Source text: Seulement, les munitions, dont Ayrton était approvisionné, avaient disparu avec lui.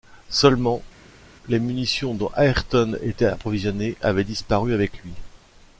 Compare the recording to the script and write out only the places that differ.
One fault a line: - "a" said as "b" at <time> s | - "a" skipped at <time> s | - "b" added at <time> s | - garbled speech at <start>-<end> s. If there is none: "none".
none